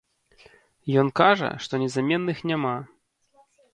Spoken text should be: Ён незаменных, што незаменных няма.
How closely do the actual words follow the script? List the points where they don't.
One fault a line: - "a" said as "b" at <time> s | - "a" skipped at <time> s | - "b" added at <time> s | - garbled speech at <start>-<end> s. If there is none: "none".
- "незаменных" said as "кажа" at 1.2 s